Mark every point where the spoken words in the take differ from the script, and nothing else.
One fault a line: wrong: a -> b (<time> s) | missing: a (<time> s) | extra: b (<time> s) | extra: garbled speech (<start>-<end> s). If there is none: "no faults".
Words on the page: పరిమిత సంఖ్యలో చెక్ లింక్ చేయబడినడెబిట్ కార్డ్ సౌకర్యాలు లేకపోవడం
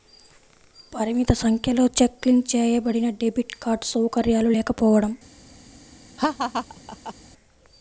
no faults